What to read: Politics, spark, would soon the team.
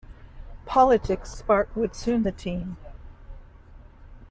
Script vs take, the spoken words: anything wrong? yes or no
no